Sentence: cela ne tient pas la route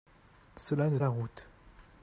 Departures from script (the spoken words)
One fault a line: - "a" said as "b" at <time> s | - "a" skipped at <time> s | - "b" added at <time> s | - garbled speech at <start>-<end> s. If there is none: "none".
- "tient pas" skipped at 1.0 s